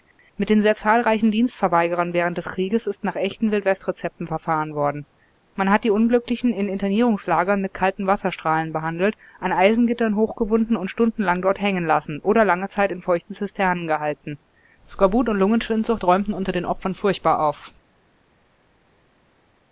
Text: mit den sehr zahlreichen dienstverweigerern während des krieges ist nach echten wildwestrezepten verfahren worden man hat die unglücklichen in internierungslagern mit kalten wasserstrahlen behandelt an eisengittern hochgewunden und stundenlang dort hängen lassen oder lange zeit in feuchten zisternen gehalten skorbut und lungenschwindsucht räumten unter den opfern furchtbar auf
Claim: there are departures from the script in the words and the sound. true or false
false